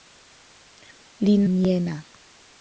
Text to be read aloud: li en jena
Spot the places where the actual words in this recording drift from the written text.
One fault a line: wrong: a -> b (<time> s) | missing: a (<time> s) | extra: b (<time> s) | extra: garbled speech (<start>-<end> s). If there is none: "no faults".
no faults